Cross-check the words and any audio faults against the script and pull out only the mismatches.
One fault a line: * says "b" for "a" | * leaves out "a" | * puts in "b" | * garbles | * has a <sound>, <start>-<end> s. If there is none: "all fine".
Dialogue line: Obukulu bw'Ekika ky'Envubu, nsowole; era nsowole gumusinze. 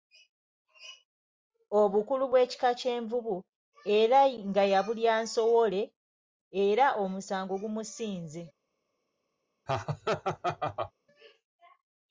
* puts in "era nga yabulya"
* says "omusango" for "nsowole"
* has a laugh, 9.7-10.9 s